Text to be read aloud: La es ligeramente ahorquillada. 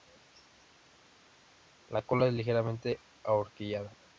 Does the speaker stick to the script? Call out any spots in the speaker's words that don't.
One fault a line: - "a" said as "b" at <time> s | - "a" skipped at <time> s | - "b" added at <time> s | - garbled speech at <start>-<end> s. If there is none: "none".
- "cola" added at 2.0 s